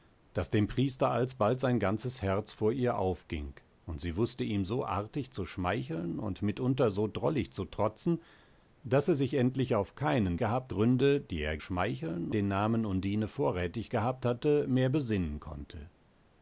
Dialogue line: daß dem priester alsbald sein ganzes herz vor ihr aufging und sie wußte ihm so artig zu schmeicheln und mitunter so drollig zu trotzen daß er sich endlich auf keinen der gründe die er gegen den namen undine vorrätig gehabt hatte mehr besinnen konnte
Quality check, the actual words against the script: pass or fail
fail